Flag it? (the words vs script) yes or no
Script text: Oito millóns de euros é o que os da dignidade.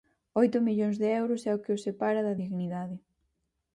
yes